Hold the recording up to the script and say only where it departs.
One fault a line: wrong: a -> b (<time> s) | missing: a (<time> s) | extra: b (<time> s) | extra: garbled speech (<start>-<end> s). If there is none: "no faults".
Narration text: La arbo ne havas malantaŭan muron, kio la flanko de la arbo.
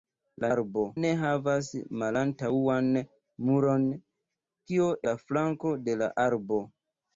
no faults